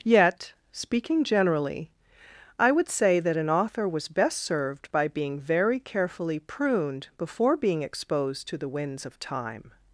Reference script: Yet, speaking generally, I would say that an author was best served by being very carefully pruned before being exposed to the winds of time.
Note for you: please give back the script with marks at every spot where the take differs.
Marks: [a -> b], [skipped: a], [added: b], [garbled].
Yet, speaking generally, I would say that an author was best served by being very carefully pruned before being exposed to the winds of time.